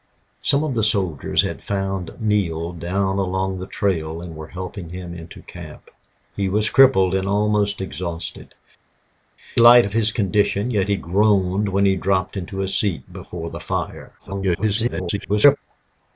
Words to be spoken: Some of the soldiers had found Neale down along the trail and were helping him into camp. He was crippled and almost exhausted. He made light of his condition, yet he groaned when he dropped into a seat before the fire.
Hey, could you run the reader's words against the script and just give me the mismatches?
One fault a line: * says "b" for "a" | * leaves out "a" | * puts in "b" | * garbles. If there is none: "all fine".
* leaves out "He made"
* garbles